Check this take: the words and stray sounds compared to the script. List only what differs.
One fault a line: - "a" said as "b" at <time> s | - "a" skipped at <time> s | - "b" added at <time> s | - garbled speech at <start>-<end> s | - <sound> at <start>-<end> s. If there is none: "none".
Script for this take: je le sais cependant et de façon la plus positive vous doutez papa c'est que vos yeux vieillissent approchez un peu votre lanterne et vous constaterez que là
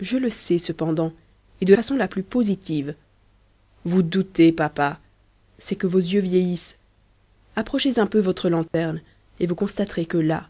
- dropout at 8.7-8.7 s